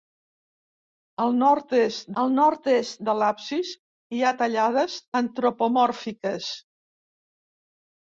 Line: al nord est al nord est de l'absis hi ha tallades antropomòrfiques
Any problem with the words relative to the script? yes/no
no